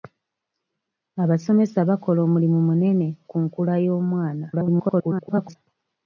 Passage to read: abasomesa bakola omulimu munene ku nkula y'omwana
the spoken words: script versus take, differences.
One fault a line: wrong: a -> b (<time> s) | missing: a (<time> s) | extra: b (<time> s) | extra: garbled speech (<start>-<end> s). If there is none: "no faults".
extra: garbled speech (4.5-5.6 s)